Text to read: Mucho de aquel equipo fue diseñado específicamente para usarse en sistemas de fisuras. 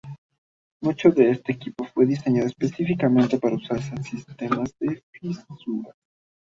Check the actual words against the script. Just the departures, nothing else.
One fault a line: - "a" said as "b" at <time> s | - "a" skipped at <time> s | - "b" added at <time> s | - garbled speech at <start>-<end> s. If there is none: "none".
- "aquel" said as "este" at 1.3 s